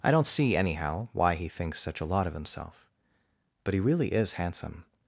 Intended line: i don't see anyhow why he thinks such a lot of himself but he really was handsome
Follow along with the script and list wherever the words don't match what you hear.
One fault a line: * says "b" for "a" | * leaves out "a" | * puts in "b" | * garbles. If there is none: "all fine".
* says "is" for "was"